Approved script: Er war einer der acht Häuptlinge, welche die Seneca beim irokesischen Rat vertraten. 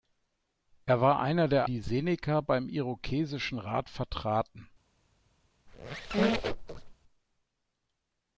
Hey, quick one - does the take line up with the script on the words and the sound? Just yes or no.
no